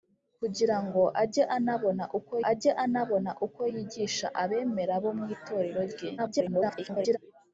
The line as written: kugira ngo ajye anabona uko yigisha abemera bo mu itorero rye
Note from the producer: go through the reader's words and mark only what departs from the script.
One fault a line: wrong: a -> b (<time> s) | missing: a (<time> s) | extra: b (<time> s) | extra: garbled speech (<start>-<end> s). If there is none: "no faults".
extra: ajye anabona uko (2.5 s)
extra: garbled speech (6.2-7.2 s)